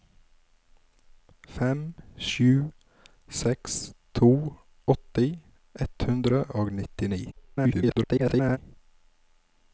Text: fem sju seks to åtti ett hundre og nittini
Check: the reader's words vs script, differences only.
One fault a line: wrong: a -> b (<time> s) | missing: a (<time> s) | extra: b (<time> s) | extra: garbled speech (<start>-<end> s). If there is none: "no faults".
extra: garbled speech (7.3-8.6 s)